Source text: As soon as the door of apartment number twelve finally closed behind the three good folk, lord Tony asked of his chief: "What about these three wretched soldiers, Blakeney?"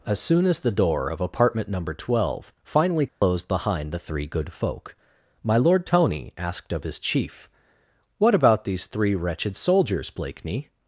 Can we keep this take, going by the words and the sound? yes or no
no